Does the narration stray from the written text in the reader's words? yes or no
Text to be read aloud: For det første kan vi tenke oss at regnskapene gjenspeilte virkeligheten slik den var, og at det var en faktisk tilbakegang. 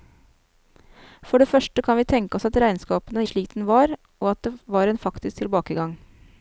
yes